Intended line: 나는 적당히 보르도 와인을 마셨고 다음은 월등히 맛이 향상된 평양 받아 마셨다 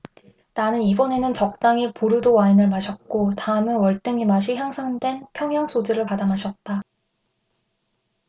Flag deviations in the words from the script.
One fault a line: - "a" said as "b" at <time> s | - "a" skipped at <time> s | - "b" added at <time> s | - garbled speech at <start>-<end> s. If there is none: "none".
- "이번에는" added at 0.8 s
- "소주를" added at 5.7 s